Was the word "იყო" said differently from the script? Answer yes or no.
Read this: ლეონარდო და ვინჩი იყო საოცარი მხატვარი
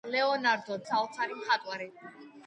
yes